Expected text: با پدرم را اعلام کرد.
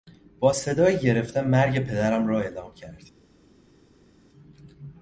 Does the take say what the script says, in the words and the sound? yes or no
no